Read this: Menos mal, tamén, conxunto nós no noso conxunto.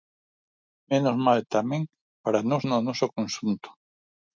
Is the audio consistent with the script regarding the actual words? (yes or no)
no